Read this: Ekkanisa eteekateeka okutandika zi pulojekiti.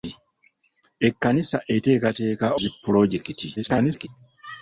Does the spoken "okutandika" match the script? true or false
false